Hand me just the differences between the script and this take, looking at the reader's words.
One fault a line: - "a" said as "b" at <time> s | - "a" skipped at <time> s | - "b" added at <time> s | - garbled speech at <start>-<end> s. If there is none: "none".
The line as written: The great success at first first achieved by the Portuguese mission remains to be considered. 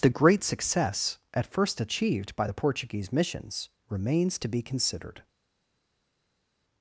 - "first" skipped at 1.8 s
- "mission" said as "missions" at 3.1 s